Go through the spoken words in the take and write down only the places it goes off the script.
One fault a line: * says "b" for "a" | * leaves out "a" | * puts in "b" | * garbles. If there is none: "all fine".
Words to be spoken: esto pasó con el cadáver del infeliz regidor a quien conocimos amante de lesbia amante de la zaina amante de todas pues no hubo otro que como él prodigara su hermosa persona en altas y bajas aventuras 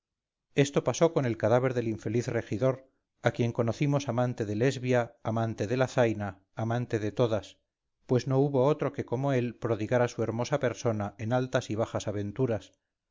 all fine